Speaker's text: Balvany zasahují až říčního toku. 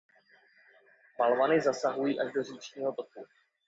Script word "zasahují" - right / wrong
right